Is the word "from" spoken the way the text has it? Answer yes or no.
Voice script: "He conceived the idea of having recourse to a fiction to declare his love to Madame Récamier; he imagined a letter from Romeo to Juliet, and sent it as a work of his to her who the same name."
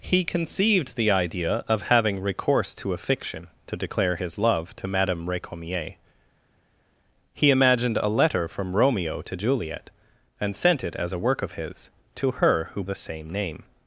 yes